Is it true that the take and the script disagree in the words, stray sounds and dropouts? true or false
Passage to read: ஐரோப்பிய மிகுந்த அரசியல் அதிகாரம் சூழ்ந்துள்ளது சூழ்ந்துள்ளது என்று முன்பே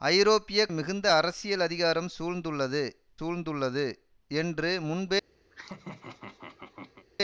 true